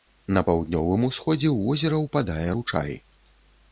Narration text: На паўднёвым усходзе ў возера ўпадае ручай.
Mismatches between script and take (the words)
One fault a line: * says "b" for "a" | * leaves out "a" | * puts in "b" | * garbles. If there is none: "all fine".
all fine